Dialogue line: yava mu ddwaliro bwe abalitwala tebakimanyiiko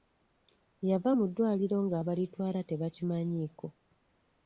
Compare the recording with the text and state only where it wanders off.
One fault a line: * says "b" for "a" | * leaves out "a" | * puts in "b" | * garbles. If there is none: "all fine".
* says "nga" for "bwe"